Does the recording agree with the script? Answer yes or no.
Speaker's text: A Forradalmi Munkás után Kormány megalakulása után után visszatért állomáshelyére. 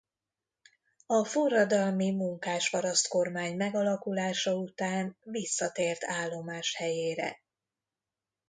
no